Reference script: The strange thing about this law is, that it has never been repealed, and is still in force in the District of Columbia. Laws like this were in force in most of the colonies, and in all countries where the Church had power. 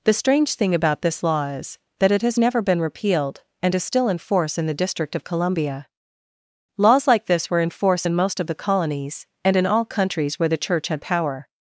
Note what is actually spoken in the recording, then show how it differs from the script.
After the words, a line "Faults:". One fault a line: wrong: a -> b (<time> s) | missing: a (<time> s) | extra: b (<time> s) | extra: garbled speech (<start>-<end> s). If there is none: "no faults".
The strange thing about this law is, that it has never been repealed, and is still in force in the District of Columbia. Laws like this were in force in most of the colonies, and in all countries where the Church had power.
Faults:
no faults